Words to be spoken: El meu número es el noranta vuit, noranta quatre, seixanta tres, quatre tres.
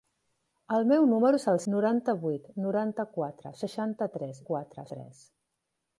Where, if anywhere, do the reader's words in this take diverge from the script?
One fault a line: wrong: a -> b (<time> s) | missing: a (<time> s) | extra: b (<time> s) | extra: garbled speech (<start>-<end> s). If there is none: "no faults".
no faults